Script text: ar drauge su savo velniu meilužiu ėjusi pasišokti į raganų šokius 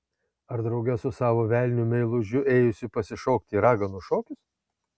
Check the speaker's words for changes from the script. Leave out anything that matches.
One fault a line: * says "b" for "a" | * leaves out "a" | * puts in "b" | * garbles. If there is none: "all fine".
all fine